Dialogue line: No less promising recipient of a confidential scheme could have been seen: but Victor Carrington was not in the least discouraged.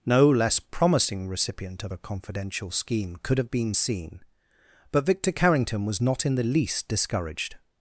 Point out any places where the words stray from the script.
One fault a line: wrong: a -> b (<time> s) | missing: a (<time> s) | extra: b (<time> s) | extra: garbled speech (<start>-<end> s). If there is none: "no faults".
no faults